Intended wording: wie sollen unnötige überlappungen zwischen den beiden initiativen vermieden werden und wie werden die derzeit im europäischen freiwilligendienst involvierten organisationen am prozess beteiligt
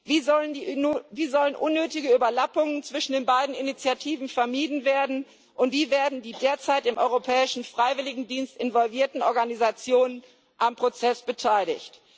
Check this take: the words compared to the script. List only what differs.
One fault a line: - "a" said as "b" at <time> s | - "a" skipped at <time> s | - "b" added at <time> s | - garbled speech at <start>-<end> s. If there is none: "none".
none